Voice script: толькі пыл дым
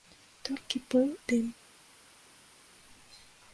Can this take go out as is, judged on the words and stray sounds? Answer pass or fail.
pass